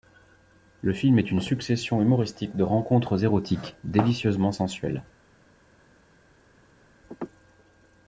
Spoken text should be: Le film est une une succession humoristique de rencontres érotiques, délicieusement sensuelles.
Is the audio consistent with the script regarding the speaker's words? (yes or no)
no